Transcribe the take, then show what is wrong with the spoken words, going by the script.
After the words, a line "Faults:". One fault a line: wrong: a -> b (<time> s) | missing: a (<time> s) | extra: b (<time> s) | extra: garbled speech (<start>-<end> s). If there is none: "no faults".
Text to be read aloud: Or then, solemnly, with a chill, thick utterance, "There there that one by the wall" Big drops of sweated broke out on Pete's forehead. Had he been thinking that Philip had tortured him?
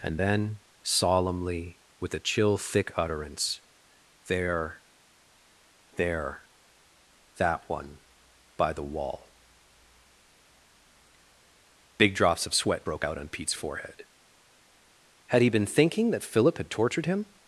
And then, solemnly, with a chill, thick utterance, "There there that one by the wall" Big drops of sweat broke out on Pete's forehead. Had he been thinking that Philip had tortured him?
Faults:
wrong: Or -> And (0.0 s)
wrong: sweated -> sweat (12.5 s)